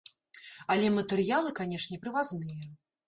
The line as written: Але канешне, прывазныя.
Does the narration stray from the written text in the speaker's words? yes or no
yes